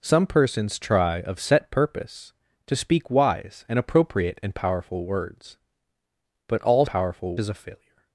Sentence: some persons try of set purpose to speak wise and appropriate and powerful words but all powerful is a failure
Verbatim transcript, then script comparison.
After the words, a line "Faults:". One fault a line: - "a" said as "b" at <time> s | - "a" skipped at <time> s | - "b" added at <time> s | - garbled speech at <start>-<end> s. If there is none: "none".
some persons try of set purpose to speak wise and appropriate and powerful words but all powerful is a failure
Faults:
none